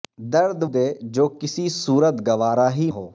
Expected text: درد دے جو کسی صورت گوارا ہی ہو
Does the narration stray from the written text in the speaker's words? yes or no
no